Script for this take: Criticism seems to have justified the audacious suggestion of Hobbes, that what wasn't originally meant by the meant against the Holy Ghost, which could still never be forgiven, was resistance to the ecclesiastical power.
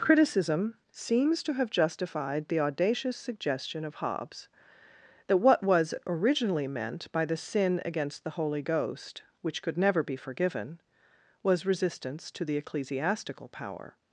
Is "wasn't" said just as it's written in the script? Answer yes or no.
no